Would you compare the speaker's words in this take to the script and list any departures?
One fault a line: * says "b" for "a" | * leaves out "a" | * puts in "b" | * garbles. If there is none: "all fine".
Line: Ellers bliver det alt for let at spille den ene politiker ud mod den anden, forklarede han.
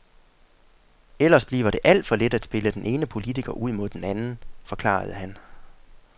all fine